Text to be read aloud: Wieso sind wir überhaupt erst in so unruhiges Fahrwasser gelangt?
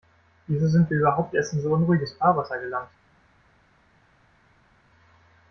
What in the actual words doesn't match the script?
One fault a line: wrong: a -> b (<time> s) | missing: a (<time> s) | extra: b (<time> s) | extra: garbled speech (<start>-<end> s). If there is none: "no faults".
no faults